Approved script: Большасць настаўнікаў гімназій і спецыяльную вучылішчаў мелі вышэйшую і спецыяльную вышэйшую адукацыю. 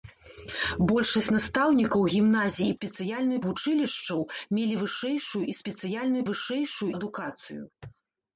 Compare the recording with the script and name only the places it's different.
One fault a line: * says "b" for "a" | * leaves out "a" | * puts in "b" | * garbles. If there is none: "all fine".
all fine